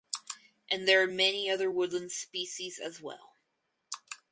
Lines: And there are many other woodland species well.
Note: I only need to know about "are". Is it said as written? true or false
true